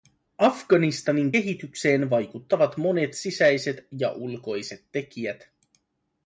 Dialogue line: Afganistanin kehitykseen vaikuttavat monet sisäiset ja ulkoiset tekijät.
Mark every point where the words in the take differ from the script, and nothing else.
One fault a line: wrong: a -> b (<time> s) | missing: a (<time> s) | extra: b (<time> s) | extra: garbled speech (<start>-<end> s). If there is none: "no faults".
no faults